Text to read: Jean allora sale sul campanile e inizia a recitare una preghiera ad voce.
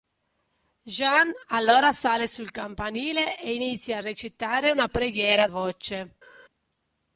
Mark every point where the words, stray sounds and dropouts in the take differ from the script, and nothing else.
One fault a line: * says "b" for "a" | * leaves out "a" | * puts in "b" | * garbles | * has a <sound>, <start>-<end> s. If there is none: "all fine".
all fine